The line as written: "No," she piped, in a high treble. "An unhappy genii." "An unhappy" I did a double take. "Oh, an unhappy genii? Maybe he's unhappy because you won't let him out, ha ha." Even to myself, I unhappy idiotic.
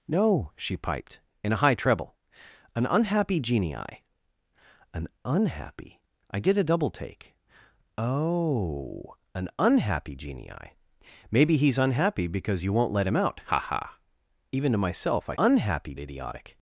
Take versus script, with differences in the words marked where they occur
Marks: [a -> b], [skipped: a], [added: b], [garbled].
"No," she piped, in a high treble. "An unhappy genii." "An unhappy" I did a double take. "Oh, an unhappy genii? Maybe he's unhappy because you won't let him out, ha ha." Even to myself, I unhappy idiotic.